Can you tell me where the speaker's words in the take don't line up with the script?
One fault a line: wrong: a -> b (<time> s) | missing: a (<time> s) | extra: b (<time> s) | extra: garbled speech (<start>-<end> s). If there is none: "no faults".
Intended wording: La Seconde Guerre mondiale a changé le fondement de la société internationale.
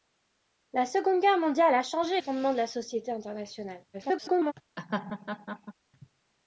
missing: le (2.2 s)
extra: garbled speech (3.9-4.5 s)